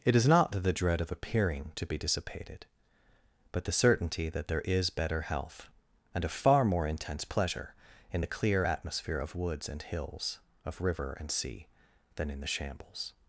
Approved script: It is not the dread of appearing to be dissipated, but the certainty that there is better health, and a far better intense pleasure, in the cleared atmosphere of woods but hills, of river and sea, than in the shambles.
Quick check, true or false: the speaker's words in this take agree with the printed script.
false